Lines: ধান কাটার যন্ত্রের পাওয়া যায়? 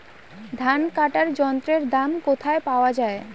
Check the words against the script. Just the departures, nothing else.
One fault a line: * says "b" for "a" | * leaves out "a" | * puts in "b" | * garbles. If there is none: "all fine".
* puts in "দাম কোথায়"